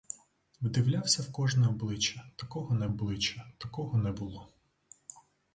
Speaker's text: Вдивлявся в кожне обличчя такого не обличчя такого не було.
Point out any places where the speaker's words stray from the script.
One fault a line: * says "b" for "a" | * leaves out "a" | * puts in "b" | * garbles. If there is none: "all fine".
all fine